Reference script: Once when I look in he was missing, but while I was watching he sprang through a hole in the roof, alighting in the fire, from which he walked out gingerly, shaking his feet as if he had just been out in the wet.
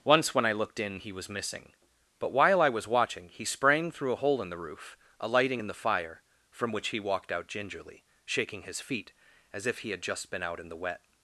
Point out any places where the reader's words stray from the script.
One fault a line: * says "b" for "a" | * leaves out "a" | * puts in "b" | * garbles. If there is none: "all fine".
* says "looked" for "look"